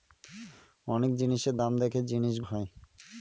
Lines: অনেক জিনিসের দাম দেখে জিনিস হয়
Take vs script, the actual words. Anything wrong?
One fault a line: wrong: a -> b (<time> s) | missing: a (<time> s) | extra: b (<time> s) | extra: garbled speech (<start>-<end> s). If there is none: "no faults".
no faults